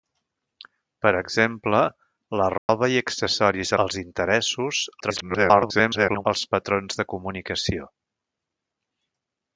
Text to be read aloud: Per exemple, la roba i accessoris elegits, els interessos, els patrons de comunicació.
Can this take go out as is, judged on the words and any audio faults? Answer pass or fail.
fail